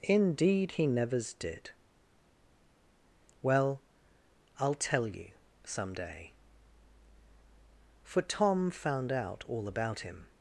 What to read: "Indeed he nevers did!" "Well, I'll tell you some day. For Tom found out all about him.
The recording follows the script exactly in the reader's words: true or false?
true